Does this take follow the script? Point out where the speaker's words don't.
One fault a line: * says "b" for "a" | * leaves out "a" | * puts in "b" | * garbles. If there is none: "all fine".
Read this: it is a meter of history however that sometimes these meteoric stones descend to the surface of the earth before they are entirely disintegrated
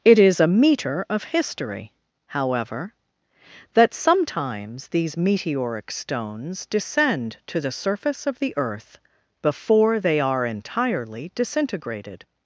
all fine